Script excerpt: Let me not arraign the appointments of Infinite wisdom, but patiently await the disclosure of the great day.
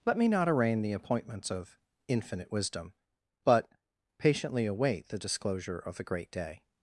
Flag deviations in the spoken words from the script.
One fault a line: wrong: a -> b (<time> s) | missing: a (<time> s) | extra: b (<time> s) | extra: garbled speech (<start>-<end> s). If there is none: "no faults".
no faults